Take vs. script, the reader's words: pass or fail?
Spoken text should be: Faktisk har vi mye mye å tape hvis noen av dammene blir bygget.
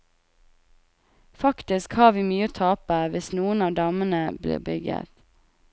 fail